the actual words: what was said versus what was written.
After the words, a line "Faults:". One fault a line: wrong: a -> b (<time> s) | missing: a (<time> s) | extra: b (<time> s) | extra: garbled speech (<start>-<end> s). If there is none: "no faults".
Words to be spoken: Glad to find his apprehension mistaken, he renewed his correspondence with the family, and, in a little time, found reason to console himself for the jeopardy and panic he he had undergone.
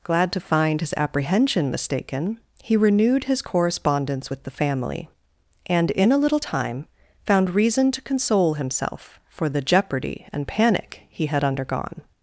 Glad to find his apprehension mistaken, he renewed his correspondence with the family, and, in a little time, found reason to console himself for the jeopardy and panic he had undergone.
Faults:
missing: he (11.3 s)